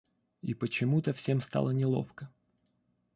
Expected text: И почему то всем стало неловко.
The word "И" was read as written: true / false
true